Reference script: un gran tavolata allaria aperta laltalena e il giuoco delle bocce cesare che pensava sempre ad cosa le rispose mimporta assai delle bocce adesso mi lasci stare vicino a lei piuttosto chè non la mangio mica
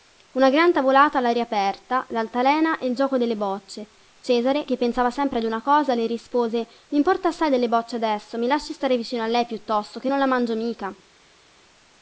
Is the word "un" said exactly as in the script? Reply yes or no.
no